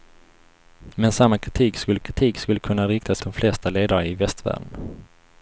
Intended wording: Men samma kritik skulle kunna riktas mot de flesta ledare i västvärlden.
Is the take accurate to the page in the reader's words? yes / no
no